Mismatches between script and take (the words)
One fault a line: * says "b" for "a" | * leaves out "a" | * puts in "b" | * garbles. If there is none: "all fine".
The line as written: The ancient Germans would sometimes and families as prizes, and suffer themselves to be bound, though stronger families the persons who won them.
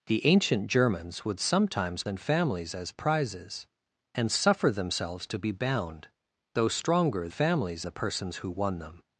all fine